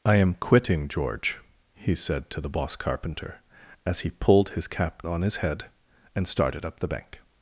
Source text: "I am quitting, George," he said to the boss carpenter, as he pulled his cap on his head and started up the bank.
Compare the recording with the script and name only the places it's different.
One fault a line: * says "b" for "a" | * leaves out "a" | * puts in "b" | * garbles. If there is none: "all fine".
all fine